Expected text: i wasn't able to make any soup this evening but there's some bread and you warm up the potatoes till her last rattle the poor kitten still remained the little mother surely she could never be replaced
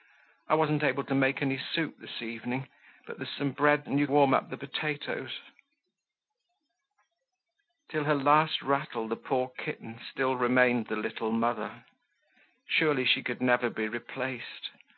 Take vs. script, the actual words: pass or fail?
pass